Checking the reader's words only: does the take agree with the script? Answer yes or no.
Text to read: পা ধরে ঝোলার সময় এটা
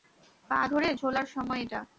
yes